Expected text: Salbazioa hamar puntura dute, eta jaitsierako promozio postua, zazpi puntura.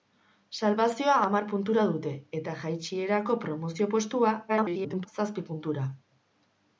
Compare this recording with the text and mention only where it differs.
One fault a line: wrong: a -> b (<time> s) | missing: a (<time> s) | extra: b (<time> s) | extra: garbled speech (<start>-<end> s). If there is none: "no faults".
extra: garbled speech (4.5-5.1 s)